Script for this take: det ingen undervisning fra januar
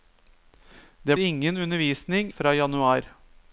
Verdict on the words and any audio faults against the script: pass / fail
pass